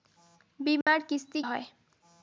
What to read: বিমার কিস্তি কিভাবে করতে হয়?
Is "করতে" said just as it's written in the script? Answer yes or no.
no